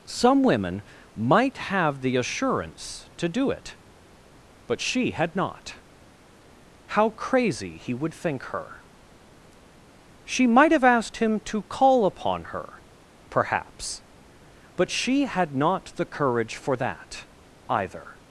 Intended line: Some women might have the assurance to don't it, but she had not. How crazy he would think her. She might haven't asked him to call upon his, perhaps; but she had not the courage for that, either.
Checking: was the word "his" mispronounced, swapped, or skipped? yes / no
yes